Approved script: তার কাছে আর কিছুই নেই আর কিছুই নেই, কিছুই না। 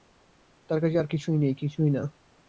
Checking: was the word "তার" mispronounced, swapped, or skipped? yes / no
no